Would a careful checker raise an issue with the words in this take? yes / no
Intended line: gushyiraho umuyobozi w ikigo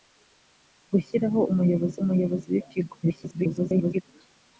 yes